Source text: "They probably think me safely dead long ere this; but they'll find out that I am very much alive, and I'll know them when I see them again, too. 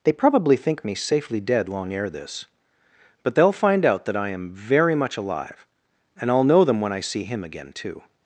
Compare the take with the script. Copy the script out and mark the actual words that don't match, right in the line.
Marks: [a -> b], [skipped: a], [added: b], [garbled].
"They probably think me safely dead long ere this; but they'll find out that I am very much alive, and I'll know them when I see [them -> him] again, too.